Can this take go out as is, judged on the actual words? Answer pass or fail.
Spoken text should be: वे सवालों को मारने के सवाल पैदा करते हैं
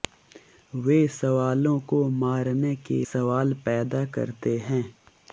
pass